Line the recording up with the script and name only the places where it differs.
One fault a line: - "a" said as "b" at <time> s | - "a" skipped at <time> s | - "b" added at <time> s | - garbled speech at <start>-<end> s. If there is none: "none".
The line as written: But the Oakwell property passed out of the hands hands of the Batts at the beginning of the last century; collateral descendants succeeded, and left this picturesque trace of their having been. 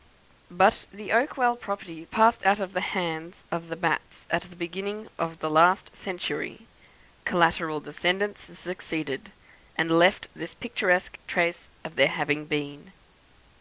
- "hands" skipped at 3.4 s